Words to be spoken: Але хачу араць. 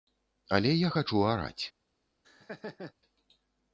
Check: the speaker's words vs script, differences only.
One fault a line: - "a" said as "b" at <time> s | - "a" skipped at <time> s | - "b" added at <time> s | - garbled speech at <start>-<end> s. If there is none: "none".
- "я" added at 0.7 s